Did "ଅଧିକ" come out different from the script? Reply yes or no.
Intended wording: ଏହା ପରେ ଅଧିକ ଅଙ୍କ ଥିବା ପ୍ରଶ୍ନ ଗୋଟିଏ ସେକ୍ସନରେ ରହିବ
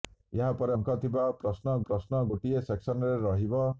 yes